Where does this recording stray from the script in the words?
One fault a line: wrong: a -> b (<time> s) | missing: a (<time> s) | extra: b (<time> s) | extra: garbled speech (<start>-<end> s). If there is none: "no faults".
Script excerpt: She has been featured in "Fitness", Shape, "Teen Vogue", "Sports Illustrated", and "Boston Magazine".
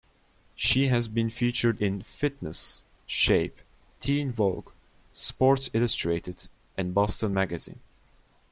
no faults